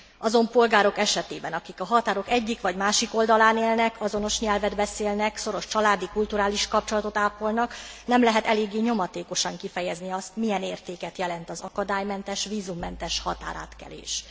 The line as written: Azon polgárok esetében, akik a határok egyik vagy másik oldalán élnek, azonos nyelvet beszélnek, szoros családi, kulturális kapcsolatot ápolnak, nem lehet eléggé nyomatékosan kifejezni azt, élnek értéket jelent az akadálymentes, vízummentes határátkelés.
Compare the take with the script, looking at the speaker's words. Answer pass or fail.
fail